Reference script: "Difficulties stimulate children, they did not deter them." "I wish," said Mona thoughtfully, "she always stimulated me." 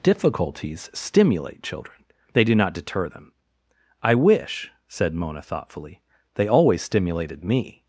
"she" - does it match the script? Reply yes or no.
no